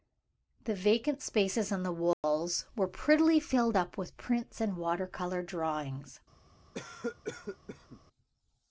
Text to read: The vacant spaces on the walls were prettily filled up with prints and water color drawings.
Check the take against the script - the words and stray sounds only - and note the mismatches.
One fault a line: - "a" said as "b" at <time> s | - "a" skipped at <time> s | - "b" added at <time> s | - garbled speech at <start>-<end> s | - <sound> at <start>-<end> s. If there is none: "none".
- dropout at 2.1-2.2 s
- cough at 6.7-8.0 s